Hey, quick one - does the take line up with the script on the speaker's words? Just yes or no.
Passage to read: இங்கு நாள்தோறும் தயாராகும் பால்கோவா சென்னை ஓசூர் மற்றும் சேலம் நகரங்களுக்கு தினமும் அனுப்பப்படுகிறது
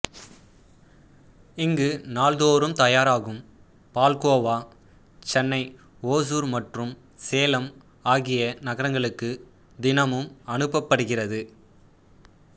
no